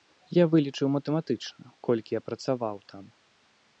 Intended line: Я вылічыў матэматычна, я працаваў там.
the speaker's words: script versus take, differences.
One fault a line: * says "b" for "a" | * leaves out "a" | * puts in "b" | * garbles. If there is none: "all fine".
* puts in "колькі"